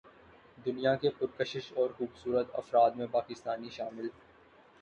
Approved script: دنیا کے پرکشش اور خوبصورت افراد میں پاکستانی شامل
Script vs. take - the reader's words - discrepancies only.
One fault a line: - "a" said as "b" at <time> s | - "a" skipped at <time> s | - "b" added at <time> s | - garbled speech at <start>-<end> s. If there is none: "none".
none